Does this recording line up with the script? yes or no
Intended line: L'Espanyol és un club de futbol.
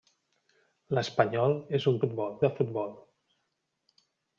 no